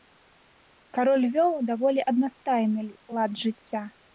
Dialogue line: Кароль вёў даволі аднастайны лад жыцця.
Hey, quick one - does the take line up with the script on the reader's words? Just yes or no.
yes